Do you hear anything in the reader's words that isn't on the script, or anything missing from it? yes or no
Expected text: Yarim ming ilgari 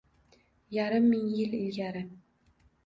yes